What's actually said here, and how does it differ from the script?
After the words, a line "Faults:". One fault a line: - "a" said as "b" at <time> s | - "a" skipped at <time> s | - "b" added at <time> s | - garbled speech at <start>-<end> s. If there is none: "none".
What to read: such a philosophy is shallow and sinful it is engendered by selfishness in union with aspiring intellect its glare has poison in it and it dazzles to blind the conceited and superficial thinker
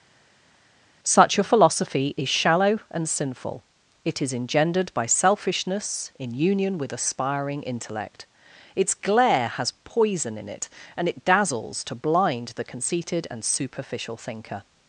such a philosophy is shallow and sinful it is engendered by selfishness in union with aspiring intellect its glare has poison in it and it dazzles to blind the conceited and superficial thinker
Faults:
none